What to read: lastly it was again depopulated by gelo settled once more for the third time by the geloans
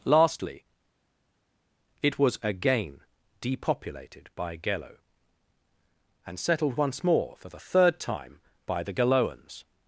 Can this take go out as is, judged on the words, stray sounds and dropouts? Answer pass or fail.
fail